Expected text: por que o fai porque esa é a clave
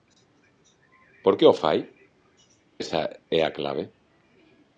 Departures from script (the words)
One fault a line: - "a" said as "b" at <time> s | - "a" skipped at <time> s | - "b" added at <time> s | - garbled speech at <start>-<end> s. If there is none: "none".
- "porque" skipped at 1.8 s